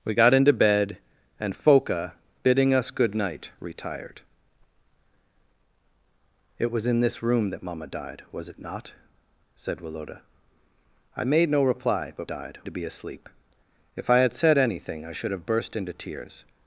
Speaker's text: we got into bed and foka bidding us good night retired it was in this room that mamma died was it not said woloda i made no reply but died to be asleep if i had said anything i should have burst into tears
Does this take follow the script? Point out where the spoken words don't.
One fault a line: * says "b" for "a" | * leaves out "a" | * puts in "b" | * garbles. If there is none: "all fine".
all fine